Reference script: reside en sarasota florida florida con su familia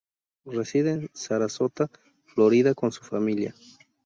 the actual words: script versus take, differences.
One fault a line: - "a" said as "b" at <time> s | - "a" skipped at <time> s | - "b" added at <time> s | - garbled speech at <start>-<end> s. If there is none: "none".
- "florida" skipped at 2.7 s